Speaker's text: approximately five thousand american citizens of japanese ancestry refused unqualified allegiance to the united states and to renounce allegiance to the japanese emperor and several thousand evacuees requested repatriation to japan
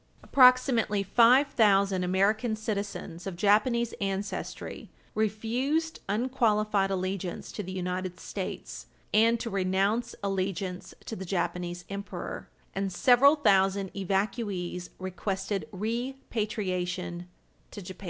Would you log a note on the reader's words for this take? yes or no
no